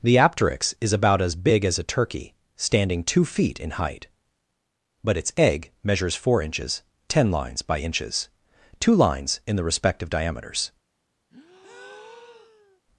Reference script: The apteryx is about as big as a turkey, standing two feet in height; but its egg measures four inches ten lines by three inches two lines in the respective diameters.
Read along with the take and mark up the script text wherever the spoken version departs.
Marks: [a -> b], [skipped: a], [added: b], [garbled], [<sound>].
The apteryx is about as big as a turkey, standing two feet in height; but its egg measures four inches ten lines by [skipped: three] inches two lines in the respective diameters. [breath]